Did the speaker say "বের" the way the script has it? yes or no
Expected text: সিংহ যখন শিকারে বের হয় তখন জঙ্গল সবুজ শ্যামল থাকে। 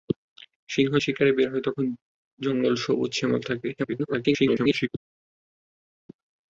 yes